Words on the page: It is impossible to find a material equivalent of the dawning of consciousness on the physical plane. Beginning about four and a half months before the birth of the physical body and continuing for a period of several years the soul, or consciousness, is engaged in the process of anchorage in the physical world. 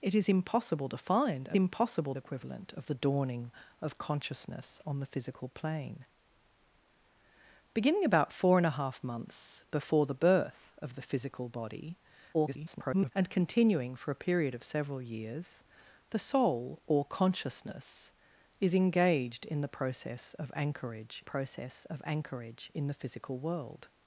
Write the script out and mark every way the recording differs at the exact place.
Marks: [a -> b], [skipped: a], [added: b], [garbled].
It is impossible to find a [material -> impossible] equivalent of the dawning of consciousness on the physical plane. Beginning about four and a half months before the birth of the physical body [garbled] and continuing for a period of several years the soul, or consciousness, is engaged in the process of anchorage [added: process of anchorage] in the physical world.